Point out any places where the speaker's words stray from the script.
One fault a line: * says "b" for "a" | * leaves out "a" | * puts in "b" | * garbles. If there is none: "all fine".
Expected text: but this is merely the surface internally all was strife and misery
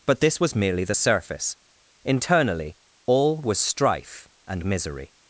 * says "was" for "is"